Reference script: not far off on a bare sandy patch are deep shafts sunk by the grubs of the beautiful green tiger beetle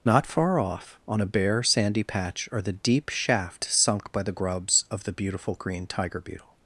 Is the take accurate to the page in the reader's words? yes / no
no